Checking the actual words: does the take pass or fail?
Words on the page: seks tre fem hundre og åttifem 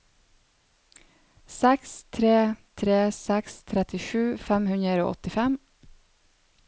fail